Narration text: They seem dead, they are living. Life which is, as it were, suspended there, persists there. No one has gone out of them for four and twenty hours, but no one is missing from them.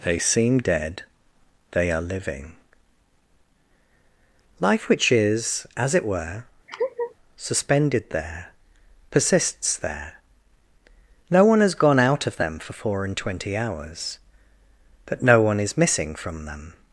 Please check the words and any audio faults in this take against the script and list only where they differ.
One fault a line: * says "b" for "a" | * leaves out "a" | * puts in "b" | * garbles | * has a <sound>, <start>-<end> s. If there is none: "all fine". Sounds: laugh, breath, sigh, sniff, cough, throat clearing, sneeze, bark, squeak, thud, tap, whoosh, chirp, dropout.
* has a laugh, 6.7-7.1 s